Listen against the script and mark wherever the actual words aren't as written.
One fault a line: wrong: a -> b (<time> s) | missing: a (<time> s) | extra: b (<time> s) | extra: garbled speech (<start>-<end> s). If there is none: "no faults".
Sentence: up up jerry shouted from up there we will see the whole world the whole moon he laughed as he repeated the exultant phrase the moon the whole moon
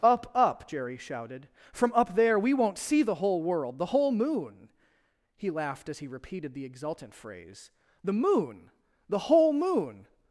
wrong: will -> won't (2.5 s)